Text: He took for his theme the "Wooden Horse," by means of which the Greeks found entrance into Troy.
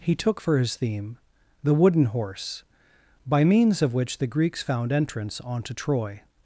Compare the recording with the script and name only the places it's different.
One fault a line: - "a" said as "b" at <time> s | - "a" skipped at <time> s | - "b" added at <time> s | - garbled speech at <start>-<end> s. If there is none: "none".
- "into" said as "onto" at 5.4 s